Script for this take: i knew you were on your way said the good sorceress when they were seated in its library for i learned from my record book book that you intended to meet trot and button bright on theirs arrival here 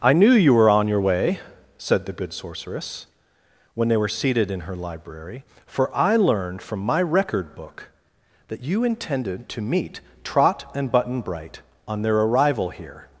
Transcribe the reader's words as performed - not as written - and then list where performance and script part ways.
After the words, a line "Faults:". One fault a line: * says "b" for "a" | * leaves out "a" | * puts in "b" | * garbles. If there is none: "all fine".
i knew you were on your way said the good sorceress when they were seated in her library for i learned from my record book that you intended to meet trot and button bright on their arrival here
Faults:
* says "her" for "its"
* leaves out "book"
* says "their" for "theirs"